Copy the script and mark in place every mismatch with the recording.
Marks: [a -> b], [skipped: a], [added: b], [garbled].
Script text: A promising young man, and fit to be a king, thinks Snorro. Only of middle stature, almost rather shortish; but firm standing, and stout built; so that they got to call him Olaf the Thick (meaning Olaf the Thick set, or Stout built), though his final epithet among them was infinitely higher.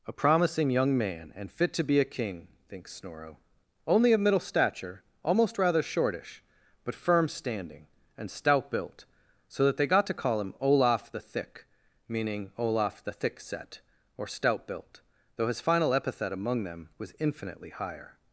A promising young man, and fit to be a king, thinks Snorro. Only of middle stature, almost rather shortish; but firm standing, and stout built; so that they got to call him Olaf the Thick (meaning Olaf the Thick set, or Stout built), though his final epithet among them was infinitely higher.